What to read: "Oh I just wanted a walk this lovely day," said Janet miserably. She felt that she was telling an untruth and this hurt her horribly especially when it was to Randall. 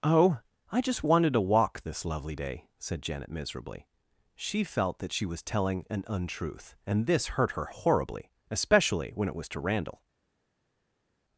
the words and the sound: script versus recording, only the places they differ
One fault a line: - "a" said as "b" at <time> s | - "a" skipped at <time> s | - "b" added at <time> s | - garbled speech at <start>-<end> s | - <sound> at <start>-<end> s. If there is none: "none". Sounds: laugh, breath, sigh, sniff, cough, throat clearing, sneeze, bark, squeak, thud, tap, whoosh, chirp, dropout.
- "a" said as "to" at 1.3 s